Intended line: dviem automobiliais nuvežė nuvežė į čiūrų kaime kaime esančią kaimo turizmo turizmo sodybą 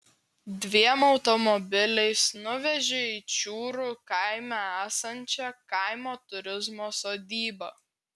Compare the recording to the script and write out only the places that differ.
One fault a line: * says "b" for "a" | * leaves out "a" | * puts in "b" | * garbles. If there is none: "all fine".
* leaves out "nuvežė"
* leaves out "kaime"
* leaves out "turizmo"